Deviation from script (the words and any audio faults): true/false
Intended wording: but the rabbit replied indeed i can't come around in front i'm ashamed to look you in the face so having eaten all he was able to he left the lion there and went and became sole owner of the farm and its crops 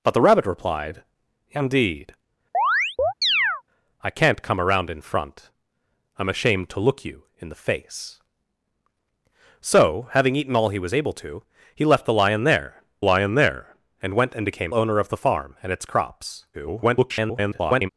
true